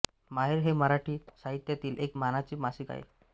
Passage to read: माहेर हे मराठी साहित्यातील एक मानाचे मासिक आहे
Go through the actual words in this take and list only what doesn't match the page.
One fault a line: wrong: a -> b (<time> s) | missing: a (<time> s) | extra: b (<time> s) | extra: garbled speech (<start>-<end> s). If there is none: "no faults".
no faults